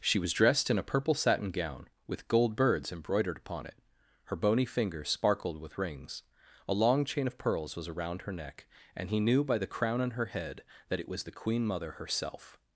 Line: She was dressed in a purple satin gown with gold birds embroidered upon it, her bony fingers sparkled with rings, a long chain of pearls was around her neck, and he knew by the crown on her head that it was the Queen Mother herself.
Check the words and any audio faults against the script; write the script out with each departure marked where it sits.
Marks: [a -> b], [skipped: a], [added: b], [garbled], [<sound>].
She was dressed in a purple satin gown with gold birds embroidered upon it, her bony fingers sparkled with rings, a long chain of pearls was around her neck, and he knew by the crown on her head that it was the Queen Mother herself.